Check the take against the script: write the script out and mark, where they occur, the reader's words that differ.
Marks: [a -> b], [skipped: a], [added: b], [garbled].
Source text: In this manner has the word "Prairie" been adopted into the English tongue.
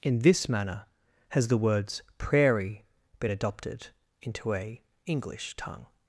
In this manner has the [word -> words] "Prairie" been adopted into [the -> a] English tongue.